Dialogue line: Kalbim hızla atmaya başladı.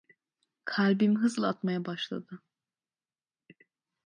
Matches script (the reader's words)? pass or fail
pass